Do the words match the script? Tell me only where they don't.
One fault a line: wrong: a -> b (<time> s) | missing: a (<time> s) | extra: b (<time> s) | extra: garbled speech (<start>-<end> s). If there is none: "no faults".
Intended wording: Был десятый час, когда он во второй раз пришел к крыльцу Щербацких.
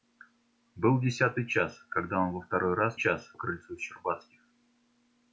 wrong: пришел -> час (2.9 s)